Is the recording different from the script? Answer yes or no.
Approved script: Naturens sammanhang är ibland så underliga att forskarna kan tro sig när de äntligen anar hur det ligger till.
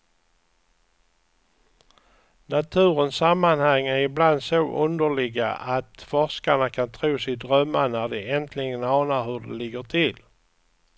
yes